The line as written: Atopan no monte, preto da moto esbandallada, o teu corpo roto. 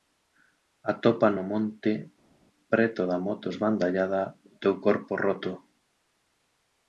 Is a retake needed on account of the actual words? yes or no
no